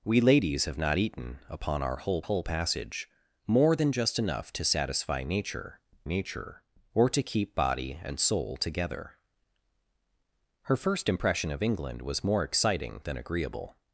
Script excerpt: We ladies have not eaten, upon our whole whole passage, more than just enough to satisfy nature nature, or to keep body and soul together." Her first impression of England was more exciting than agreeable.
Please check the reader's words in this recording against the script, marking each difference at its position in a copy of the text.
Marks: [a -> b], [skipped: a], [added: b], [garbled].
We ladies have not eaten, upon our whole whole passage, more than just enough to satisfy nature nature, or to keep body and soul together." Her first impression of England was more exciting than agreeable.